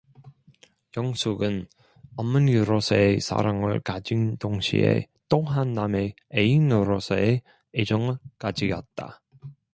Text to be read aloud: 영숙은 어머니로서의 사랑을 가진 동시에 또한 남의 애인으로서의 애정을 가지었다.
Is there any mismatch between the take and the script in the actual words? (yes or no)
no